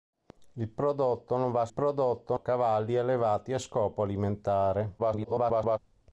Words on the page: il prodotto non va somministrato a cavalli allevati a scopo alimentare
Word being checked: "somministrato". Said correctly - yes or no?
no